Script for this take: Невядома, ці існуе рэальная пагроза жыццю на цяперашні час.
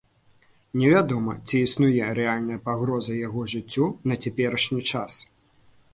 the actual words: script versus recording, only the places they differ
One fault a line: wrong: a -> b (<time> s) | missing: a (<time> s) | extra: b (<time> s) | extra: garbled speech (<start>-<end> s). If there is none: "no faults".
extra: яго (3.3 s)